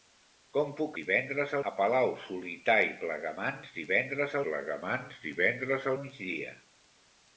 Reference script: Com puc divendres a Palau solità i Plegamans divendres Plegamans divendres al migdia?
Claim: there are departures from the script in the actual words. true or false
false